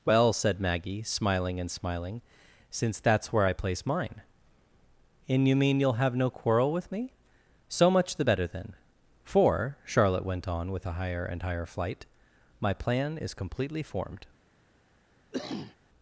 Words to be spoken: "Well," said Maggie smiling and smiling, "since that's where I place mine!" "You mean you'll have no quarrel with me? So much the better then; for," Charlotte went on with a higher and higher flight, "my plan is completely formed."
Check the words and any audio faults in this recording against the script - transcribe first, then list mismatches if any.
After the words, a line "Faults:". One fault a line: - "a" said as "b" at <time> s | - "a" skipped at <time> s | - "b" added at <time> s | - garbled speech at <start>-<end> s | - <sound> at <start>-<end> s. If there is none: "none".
"Well," said Maggie smiling and smiling, "since that's where I place mine!" and "You mean you'll have no quarrel with me? So much the better then; for," Charlotte went on with a higher and higher flight, "my plan is completely formed."
Faults:
- "and" added at 5.3 s
- cough at 15.3-15.8 s